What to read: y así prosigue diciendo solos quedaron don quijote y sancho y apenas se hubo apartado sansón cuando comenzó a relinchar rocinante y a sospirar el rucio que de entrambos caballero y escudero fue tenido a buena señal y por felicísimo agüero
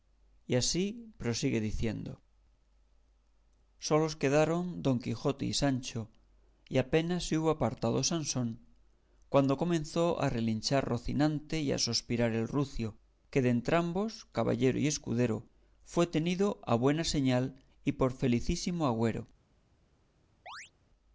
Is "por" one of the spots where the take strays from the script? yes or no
no